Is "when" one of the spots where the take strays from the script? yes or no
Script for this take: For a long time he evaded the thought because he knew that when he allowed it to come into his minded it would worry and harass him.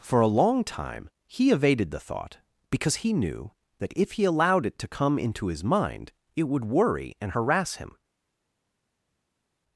yes